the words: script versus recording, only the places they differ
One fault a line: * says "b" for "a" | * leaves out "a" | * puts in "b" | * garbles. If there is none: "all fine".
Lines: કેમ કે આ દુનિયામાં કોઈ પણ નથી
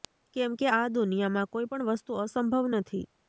* puts in "વસ્તુ અસંભવ"